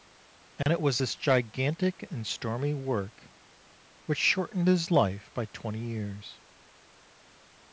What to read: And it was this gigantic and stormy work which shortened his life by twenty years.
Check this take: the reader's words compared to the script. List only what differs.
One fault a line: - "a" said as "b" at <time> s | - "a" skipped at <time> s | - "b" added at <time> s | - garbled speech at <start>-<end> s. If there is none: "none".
none